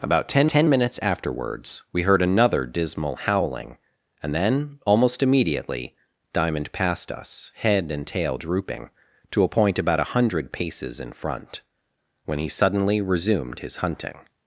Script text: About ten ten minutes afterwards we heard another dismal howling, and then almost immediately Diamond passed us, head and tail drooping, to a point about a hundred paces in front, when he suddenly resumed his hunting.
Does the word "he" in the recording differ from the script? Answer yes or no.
no